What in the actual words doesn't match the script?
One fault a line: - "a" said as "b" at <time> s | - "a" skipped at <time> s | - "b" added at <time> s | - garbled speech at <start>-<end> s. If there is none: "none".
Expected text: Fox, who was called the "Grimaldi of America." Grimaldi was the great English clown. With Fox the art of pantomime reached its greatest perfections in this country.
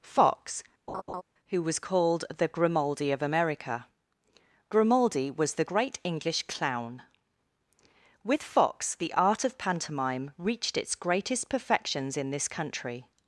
none